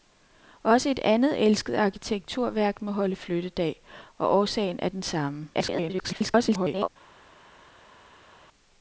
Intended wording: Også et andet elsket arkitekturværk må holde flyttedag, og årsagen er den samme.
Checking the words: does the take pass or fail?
fail